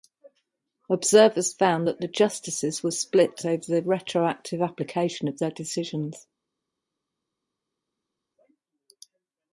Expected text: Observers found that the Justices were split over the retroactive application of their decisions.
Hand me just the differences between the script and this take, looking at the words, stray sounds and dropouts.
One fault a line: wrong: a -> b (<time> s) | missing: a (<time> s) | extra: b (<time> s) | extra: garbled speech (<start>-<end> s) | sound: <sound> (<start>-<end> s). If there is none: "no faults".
no faults